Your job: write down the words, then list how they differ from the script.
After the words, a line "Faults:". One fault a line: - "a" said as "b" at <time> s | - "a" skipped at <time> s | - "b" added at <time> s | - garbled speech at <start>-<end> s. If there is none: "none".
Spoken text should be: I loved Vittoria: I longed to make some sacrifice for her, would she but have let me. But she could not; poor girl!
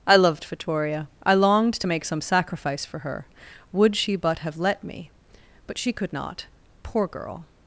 I loved Vittoria: I longed to make some sacrifice for her, would she but have let me. But she could not; poor girl!
Faults:
none